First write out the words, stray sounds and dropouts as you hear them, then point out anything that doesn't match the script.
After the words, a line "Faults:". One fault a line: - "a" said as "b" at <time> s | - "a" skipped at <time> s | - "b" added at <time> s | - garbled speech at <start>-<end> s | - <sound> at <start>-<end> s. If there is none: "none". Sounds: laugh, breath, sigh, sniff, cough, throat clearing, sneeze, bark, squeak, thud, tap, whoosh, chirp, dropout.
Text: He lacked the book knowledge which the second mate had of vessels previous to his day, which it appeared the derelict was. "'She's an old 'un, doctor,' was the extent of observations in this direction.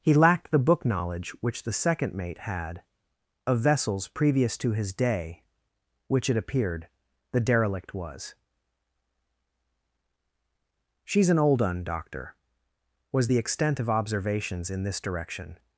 He lacked the book knowledge which the second mate had of vessels previous to his day, which it appeared the derelict was. "'She's an old 'un, doctor,' was the extent of observations in this direction.
Faults:
none